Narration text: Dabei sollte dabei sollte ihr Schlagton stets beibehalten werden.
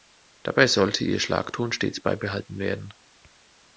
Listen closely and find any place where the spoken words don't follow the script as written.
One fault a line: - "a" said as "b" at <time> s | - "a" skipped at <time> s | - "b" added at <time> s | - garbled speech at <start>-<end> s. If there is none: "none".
- "dabei sollte" skipped at 1.0 s